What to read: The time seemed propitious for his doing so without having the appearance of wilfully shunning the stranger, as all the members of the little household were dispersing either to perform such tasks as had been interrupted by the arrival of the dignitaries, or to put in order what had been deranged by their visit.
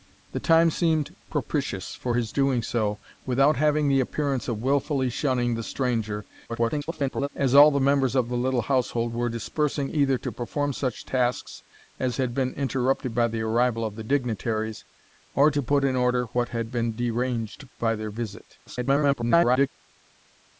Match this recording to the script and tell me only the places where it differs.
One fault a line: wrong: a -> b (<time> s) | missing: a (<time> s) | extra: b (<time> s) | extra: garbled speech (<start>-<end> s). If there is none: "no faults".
extra: garbled speech (6.5-7.3 s)
extra: garbled speech (18.7-19.7 s)